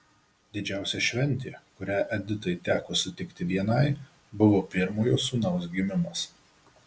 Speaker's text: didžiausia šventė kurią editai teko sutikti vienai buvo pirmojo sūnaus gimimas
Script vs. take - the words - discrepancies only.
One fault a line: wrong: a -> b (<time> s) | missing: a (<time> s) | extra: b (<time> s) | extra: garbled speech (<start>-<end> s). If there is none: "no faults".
no faults